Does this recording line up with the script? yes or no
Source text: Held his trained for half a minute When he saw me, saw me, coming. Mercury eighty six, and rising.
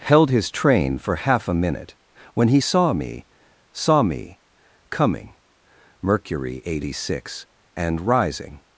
no